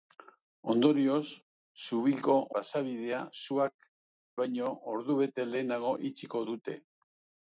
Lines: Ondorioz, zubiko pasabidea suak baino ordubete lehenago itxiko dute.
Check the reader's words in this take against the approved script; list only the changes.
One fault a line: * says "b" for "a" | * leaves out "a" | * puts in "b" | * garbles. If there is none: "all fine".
all fine